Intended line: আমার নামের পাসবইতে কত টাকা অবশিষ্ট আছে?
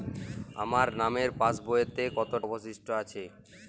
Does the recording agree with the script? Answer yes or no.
no